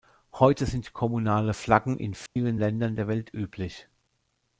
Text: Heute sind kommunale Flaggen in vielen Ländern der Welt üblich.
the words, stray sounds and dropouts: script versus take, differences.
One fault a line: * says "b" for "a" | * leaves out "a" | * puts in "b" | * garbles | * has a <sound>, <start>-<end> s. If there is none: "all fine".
* has a dropout, 2.3-2.4 s